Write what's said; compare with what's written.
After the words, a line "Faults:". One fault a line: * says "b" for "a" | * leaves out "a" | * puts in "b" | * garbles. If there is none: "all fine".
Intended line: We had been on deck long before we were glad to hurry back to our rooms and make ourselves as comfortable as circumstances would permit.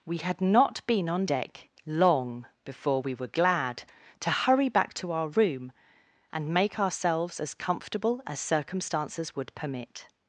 We had not been on deck long before we were glad to hurry back to our room and make ourselves as comfortable as circumstances would permit.
Faults:
* puts in "not"
* says "room" for "rooms"